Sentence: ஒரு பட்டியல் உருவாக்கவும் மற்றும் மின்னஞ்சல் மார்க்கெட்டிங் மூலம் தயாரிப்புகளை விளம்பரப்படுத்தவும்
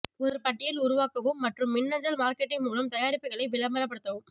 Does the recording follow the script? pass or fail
pass